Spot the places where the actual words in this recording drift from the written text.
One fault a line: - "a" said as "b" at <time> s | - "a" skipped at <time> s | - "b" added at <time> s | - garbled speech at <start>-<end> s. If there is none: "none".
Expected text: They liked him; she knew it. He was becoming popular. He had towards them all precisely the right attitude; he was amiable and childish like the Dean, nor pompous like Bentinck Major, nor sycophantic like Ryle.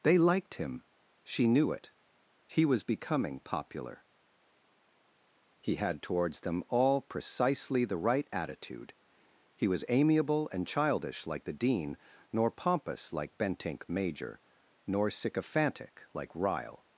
none